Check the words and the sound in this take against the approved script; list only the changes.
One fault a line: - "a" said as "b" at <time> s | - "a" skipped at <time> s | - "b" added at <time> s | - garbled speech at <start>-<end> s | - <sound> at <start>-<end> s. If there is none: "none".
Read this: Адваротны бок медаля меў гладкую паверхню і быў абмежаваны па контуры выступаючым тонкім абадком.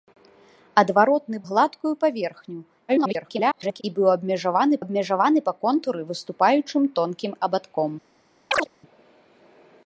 - "бок медаля меў" skipped at 1.4 s
- garbled speech at 2.9-3.8 s
- "абмежаваны" added at 4.8 s
- chirp at 8.5-8.7 s